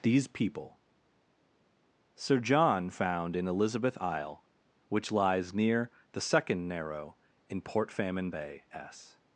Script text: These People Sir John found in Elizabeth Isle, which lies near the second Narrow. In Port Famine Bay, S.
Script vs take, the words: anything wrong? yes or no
no